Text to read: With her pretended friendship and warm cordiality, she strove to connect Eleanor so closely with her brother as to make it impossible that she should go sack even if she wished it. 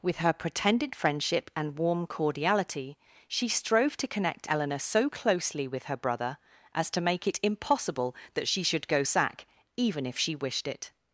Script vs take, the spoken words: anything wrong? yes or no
no